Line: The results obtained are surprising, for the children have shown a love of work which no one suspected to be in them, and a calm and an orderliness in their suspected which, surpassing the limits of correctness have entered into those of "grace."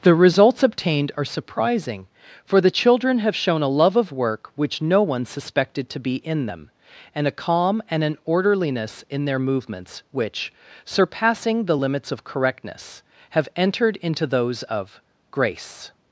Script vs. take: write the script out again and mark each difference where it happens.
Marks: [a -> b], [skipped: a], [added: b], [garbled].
The results obtained are surprising, for the children have shown a love of work which no one suspected to be in them, and a calm and an orderliness in their [suspected -> movements] which, surpassing the limits of correctness have entered into those of "grace."